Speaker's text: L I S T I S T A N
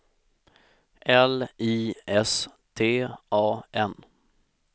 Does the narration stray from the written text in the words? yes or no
yes